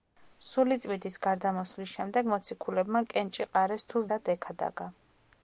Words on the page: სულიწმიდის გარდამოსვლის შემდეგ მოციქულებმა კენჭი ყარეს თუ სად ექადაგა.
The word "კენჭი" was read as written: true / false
true